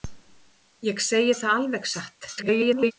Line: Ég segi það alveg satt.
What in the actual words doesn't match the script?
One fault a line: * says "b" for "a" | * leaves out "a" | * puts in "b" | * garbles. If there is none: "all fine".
* garbles